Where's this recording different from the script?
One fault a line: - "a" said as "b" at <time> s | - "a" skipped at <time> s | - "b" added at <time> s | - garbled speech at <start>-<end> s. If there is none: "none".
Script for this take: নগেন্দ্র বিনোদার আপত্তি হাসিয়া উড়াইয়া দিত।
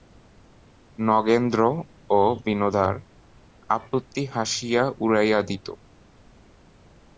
- "ও" added at 2.1 s